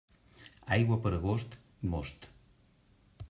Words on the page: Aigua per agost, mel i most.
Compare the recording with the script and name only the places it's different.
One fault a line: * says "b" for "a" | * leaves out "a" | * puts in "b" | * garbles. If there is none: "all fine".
* leaves out "mel"